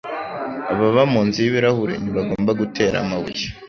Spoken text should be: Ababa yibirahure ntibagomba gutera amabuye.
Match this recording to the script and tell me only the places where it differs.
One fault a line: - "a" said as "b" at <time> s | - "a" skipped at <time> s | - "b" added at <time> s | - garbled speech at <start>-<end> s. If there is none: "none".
- "munzu" added at 1.1 s